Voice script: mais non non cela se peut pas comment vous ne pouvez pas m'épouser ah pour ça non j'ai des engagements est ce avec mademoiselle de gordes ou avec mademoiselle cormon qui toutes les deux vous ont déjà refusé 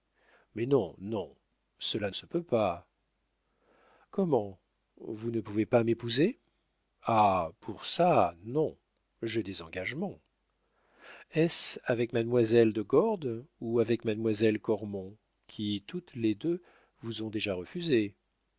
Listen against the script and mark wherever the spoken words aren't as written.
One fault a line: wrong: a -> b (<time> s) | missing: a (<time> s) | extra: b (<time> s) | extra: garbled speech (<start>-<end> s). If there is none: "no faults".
no faults